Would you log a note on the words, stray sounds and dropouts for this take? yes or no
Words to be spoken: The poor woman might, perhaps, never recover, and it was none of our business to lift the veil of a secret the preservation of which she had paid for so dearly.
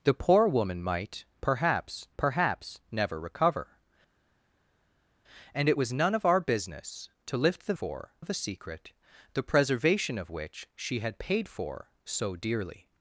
yes